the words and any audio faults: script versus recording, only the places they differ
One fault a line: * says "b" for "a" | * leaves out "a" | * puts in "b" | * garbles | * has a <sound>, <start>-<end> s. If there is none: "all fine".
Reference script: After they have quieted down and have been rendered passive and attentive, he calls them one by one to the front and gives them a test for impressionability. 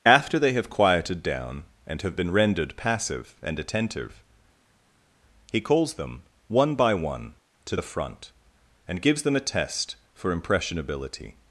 all fine